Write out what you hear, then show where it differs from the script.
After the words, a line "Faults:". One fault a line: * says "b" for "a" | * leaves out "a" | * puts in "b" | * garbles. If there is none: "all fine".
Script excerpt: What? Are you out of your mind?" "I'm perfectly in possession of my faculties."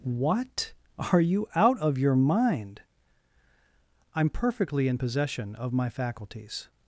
What? Are you out of your mind?" "I'm perfectly in possession of my faculties."
Faults:
all fine